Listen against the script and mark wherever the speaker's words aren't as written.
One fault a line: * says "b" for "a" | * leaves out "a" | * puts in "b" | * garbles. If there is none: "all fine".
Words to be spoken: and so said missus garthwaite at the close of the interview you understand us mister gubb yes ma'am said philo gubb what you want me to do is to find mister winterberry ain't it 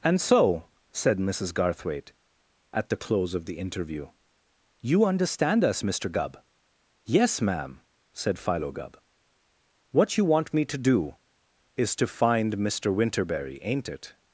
all fine